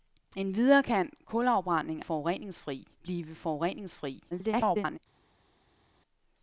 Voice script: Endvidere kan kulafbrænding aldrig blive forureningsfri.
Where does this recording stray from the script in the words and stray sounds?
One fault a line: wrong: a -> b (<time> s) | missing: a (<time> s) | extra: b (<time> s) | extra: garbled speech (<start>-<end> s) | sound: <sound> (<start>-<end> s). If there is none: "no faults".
wrong: aldrig -> forureningsfri (2.0 s)
extra: garbled speech (4.3-5.0 s)